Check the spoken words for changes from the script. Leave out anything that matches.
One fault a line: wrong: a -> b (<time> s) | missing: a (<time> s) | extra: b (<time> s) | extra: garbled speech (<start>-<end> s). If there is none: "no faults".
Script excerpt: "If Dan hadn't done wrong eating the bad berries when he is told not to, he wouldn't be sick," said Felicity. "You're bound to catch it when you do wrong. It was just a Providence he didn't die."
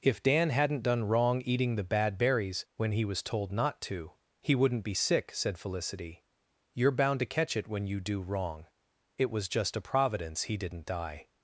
wrong: is -> was (3.0 s)